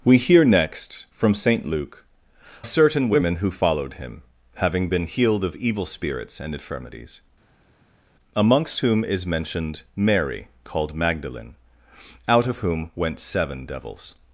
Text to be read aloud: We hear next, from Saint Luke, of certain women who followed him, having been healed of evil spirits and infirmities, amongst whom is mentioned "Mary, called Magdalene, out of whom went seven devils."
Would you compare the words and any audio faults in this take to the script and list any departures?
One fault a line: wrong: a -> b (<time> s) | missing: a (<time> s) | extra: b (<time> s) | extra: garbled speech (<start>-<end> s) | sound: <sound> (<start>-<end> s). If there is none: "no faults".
missing: of (2.1 s)